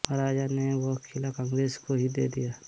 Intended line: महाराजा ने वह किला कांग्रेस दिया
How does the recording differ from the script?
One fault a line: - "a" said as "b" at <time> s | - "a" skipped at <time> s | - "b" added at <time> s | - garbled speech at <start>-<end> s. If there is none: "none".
- "को ही दे" added at 1.8 s